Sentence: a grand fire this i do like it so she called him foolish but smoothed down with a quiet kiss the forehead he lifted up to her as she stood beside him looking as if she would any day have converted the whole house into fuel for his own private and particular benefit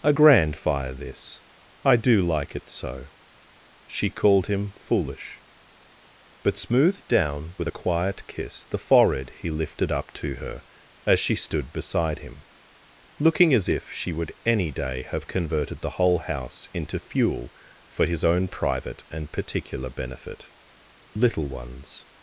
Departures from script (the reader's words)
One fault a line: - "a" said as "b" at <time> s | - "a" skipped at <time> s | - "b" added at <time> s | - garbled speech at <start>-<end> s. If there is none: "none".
- "little ones" added at 21.1 s